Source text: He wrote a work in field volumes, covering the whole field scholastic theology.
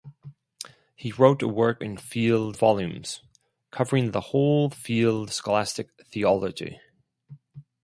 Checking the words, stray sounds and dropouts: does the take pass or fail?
pass